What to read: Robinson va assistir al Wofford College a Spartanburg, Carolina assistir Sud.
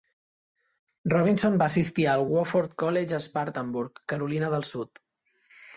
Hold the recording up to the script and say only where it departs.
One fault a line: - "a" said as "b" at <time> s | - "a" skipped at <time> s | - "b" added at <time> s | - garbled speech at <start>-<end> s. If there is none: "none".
- "assistir" said as "del" at 4.6 s